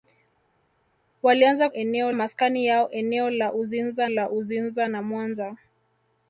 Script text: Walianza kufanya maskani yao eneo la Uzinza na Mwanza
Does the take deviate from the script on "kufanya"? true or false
true